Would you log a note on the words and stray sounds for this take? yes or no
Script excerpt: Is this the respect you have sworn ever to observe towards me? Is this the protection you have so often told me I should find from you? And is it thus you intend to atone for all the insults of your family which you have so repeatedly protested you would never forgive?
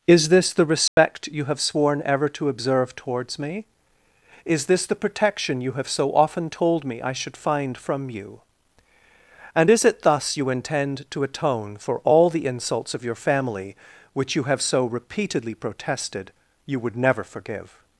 yes